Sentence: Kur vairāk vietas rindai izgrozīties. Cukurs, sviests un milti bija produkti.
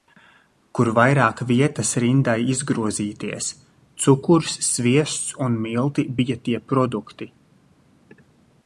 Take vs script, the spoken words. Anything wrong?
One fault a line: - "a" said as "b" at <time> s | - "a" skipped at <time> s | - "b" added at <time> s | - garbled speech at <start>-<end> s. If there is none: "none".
- "tie" added at 6.5 s